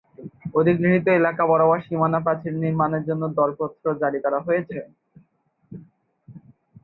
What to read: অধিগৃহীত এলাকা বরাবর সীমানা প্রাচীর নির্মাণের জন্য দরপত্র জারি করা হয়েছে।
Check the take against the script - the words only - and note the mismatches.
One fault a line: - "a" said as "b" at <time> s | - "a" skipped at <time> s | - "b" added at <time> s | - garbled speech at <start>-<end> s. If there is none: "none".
none